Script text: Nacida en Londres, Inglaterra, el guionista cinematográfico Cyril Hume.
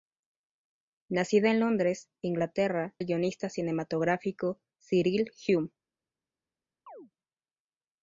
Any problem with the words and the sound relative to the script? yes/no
yes